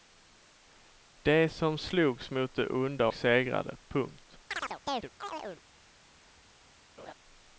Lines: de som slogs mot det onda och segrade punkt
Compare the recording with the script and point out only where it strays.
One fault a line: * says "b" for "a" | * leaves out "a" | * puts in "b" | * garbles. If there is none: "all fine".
* leaves out "och"